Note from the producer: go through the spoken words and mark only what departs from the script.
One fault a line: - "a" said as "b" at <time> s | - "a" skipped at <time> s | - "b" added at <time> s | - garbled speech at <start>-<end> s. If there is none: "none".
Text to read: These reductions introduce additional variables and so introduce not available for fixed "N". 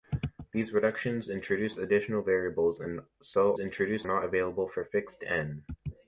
none